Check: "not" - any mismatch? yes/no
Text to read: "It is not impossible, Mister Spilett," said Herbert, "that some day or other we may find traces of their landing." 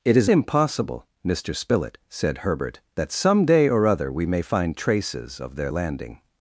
yes